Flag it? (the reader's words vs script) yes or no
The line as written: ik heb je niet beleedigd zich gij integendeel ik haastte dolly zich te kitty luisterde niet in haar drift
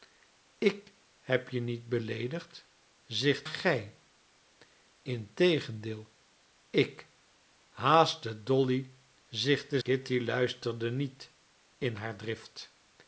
no